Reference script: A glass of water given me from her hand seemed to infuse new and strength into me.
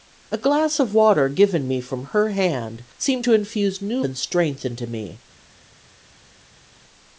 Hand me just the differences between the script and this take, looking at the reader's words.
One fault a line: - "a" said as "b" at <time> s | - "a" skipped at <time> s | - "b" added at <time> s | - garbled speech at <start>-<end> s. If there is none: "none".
none